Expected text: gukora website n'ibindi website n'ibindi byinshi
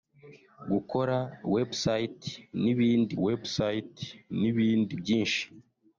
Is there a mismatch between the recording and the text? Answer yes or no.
no